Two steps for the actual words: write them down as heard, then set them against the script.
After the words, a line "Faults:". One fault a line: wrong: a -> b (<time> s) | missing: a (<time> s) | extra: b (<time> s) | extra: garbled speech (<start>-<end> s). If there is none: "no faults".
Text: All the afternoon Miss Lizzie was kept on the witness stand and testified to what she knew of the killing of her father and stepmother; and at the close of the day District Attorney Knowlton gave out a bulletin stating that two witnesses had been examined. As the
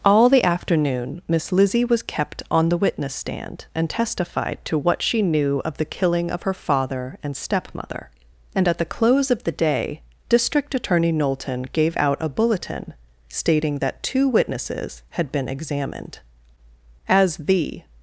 All the afternoon Miss Lizzie was kept on the witness stand and testified to what she knew of the killing of her father and stepmother; and at the close of the day District Attorney Knowlton gave out a bulletin stating that two witnesses had been examined. As the
Faults:
no faults